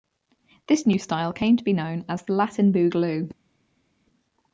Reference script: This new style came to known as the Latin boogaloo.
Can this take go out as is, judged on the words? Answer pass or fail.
fail